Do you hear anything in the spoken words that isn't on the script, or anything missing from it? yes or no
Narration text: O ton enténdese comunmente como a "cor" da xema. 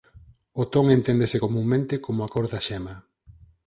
no